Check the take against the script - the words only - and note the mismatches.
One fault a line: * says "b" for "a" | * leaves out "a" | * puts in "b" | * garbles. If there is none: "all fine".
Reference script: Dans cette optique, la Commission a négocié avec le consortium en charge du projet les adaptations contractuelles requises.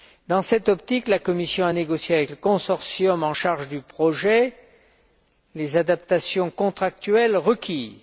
all fine